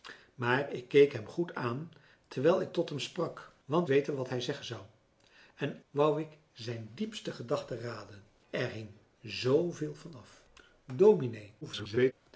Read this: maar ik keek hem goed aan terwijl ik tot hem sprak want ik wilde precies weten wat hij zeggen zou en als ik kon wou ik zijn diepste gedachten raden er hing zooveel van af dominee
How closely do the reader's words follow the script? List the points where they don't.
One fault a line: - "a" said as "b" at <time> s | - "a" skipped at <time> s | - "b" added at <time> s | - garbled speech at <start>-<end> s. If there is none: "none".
- "ik wilde precies" skipped at 3.9 s
- "als ik kon" skipped at 5.8 s
- garbled speech at 11.6-12.1 s